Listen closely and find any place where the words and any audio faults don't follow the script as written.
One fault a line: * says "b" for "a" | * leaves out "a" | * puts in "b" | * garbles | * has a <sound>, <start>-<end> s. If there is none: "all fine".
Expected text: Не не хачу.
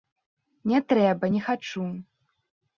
* puts in "трэба"